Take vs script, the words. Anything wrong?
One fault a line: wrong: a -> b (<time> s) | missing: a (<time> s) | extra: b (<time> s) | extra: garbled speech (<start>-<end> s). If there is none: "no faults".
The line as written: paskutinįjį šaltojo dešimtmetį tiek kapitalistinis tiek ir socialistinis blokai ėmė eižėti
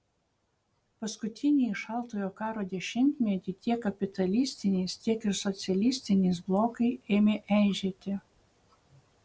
extra: karo (2.4 s)